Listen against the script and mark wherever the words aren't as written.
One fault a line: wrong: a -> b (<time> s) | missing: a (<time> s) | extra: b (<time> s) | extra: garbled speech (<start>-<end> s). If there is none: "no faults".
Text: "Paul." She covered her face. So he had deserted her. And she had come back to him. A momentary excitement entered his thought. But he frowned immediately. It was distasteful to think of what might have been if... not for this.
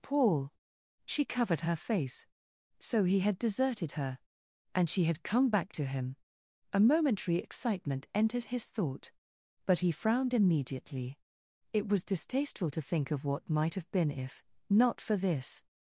no faults